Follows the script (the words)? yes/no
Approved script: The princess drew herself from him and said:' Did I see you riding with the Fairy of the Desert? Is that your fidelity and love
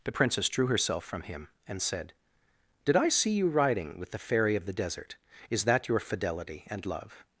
yes